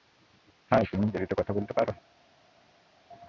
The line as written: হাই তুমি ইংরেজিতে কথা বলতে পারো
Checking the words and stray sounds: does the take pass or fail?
pass